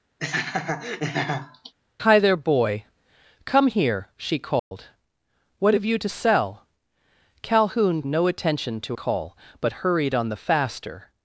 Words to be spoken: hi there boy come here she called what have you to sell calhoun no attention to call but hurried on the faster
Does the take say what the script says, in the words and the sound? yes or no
no